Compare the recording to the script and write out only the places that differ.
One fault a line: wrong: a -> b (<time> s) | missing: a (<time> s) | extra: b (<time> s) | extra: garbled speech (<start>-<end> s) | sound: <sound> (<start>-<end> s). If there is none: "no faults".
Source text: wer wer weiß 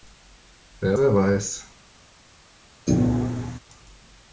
sound: thud (2.9-3.6 s)